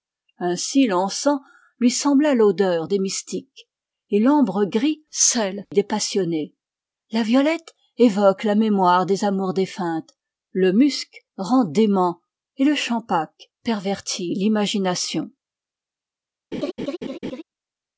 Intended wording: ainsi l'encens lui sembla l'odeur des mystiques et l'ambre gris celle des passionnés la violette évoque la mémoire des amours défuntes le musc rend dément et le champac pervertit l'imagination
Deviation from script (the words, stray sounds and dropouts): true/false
true